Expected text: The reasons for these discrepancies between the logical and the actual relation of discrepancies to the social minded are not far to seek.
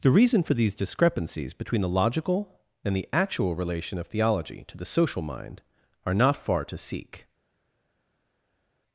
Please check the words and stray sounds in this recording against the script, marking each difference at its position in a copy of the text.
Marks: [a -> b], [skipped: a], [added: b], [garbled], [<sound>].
The [reasons -> reason] for these discrepancies between the logical and the actual relation of [discrepancies -> theology] to the social [minded -> mind] are not far to seek.